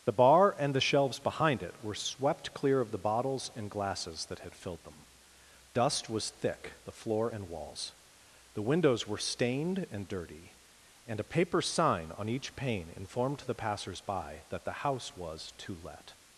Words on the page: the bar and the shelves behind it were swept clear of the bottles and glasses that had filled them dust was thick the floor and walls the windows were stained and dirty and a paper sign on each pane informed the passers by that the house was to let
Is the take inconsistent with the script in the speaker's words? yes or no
no